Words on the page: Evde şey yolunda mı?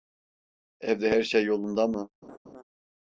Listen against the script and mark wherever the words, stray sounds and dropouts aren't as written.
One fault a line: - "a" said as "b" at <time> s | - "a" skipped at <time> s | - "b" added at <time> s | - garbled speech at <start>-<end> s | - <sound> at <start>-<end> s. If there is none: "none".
- "her" added at 1.1 s
- laugh at 2.2-2.6 s